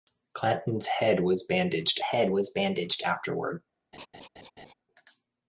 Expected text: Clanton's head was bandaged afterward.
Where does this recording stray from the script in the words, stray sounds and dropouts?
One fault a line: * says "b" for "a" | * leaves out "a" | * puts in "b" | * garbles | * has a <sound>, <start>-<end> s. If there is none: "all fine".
* puts in "head was bandaged"
* has a laugh, 3.9-4.7 s